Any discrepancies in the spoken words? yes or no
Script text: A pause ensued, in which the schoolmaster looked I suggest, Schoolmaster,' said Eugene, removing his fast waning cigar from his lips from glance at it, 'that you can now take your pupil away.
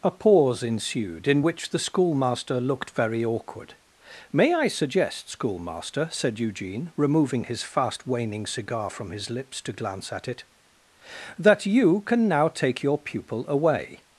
yes